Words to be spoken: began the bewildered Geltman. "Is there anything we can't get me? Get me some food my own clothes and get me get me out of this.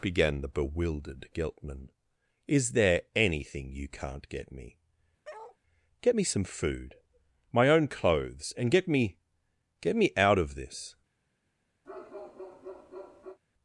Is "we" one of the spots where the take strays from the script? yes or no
yes